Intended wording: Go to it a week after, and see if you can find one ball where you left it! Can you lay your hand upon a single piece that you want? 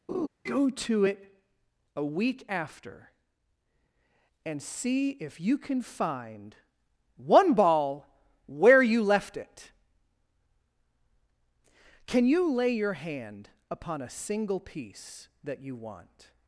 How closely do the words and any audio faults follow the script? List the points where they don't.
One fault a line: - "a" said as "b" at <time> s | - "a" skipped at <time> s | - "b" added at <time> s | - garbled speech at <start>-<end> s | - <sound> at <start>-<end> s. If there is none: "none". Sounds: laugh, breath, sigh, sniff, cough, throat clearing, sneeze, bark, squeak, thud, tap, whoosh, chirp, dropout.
- laugh at 0.1-0.3 s